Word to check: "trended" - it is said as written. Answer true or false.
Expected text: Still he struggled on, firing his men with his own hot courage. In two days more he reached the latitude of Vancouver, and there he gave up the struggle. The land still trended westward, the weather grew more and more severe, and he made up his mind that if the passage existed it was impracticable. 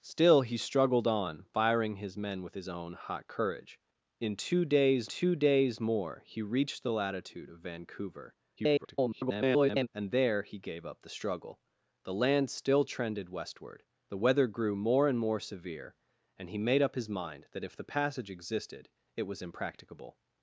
true